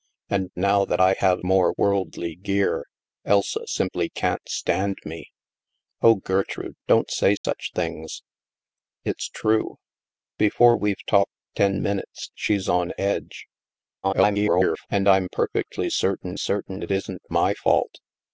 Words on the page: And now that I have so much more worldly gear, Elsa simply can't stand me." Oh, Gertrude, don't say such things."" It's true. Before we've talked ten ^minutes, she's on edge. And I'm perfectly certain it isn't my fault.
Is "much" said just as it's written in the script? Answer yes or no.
no